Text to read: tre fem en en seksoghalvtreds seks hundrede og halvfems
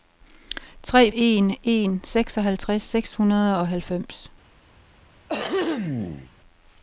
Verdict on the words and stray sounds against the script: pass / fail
fail